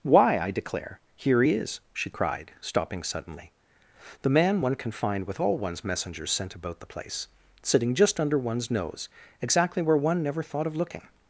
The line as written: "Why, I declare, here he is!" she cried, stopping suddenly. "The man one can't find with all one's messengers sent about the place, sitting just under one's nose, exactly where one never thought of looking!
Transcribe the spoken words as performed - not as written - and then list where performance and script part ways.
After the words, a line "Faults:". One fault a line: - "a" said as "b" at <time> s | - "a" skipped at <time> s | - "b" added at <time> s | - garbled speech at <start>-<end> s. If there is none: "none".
"Why, I declare, here he is!" she cried, stopping suddenly. "The man one can find with all one's messengers sent about the place, sitting just under one's nose, exactly where one never thought of looking!
Faults:
- "can't" said as "can" at 4.8 s